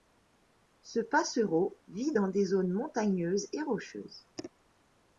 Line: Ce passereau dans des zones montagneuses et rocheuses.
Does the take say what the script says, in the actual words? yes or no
no